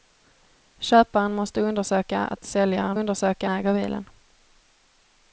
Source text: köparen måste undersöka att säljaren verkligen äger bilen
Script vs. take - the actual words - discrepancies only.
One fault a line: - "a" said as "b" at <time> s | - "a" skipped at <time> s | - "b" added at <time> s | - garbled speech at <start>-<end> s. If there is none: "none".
- "verkligen" said as "undersöka" at 2.9 s